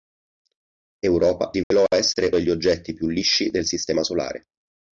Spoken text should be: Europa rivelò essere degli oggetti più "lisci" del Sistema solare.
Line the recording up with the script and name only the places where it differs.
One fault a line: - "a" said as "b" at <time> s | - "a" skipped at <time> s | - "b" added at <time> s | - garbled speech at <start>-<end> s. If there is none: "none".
none